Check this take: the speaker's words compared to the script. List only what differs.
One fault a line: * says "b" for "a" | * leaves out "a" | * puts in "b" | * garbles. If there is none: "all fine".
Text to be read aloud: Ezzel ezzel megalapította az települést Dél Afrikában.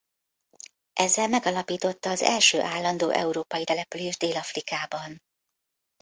* leaves out "ezzel"
* puts in "első állandó európai"